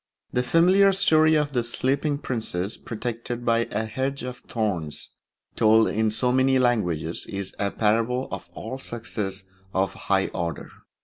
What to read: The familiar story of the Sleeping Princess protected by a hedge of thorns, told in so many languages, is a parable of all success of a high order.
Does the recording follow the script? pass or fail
pass